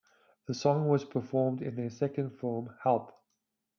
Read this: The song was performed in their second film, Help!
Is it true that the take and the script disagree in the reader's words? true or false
false